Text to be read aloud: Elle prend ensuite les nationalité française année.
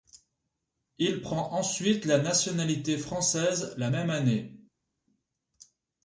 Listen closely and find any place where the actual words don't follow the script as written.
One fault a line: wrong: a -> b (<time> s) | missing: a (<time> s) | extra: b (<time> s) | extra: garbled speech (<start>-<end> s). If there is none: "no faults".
wrong: Elle -> Il (1.0 s)
wrong: les -> la (2.0 s)
extra: la même (3.8 s)